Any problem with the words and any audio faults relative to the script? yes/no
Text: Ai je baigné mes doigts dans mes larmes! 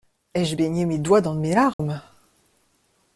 yes